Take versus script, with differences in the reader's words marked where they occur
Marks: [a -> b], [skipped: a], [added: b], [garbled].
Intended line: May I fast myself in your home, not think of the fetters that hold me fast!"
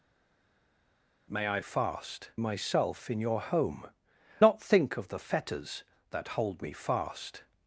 May I fast myself in your home, not think of the fetters that hold me fast!"